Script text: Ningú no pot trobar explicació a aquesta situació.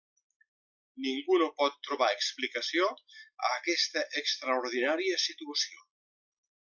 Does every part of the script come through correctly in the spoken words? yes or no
no